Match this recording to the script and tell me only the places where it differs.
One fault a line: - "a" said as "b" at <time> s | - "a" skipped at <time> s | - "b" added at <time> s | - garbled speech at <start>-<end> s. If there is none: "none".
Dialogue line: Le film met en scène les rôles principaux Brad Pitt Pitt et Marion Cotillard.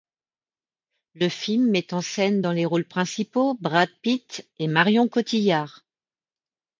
- "dans" added at 2.4 s
- "Pitt" skipped at 4.5 s